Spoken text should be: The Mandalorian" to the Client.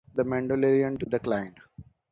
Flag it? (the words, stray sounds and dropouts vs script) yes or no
no